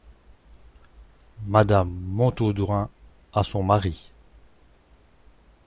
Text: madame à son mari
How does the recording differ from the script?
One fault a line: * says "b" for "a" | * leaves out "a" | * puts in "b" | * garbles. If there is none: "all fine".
* puts in "montaudoin"